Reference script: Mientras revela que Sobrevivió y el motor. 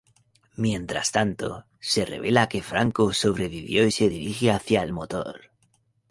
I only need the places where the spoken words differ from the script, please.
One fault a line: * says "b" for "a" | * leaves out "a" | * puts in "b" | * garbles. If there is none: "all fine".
* puts in "tanto se"
* puts in "Franco"
* puts in "se dirige hacia"